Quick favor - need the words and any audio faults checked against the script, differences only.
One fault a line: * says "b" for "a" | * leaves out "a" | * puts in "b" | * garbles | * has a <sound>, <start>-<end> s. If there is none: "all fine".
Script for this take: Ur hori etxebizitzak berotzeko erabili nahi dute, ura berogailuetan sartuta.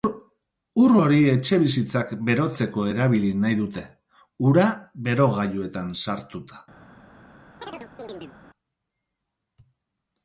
* has a chirp, 7.6-8.4 s